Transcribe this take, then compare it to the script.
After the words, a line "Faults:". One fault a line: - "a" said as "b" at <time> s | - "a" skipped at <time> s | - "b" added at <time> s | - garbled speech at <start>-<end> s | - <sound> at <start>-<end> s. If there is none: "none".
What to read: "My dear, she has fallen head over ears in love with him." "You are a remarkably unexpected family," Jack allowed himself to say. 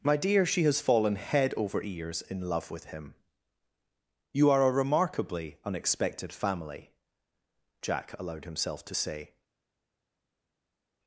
"My dear, she has fallen head over ears in love with him." "You are a remarkably unexpected family," Jack allowed himself to say.
Faults:
none